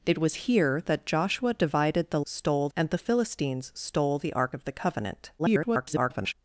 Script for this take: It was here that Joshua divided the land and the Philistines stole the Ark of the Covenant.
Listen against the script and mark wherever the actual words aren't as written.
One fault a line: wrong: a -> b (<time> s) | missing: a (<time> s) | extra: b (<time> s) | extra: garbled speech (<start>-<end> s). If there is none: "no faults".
wrong: land -> stole (2.2 s)
extra: garbled speech (5.4-6.3 s)